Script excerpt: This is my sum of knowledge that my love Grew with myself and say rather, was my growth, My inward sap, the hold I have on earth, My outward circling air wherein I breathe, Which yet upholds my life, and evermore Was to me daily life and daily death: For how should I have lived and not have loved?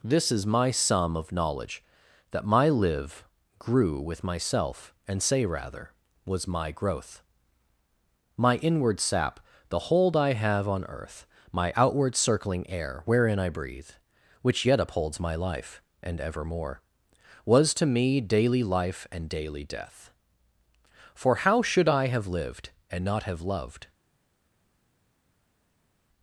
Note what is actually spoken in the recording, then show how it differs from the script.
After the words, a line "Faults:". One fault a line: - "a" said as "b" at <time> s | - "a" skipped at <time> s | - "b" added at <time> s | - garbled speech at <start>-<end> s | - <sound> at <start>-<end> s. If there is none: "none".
This is my sum of knowledge that my live Grew with myself and say rather, was my growth, My inward sap, the hold I have on earth, My outward circling air wherein I breathe, Which yet upholds my life, and evermore Was to me daily life and daily death: For how should I have lived and not have loved?
Faults:
- "love" said as "live" at 2.7 s